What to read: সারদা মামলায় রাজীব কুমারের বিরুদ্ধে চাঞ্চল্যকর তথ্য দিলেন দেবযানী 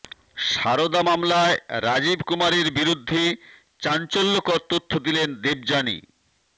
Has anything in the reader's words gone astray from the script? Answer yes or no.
no